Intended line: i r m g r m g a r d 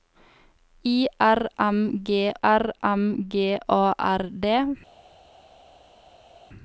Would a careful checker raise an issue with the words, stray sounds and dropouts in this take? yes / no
no